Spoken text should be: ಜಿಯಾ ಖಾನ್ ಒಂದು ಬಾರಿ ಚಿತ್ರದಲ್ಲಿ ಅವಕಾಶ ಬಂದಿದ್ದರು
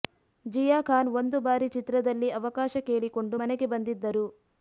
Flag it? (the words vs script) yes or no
yes